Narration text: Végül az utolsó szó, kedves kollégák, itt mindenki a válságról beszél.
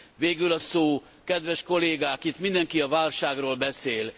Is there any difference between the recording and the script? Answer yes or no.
yes